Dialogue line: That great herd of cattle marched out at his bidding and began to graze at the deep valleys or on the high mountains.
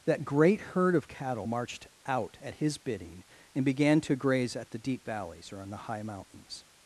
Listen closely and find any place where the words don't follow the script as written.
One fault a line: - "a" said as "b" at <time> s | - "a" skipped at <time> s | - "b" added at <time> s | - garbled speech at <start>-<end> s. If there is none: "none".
none